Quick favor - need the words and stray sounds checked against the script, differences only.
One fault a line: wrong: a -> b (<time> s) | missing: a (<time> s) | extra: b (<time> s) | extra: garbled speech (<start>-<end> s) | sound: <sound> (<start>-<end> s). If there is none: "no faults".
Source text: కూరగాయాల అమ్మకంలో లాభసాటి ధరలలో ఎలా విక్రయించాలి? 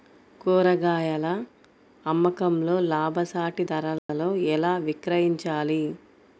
sound: dropout (4.0-4.1 s)